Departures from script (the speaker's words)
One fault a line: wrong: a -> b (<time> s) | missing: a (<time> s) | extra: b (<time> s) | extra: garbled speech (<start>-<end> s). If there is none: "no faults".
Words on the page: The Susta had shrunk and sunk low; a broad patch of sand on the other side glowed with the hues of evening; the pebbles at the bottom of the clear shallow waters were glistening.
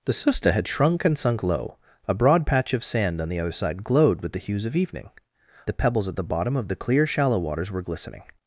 no faults